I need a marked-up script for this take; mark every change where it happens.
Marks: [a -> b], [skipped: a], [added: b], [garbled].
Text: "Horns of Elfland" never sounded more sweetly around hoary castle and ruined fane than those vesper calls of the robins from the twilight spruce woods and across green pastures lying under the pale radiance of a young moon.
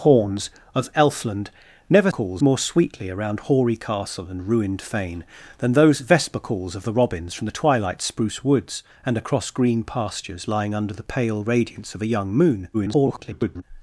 "Horns of Elfland" never [sounded -> calls] more sweetly around hoary castle and ruined fane than those vesper calls of the robins from the twilight spruce woods and across green pastures lying under the pale radiance of a young moon. [garbled]